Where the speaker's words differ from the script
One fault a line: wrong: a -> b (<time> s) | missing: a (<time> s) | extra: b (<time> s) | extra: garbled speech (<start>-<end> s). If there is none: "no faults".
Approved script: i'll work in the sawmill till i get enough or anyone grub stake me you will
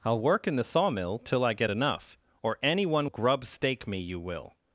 no faults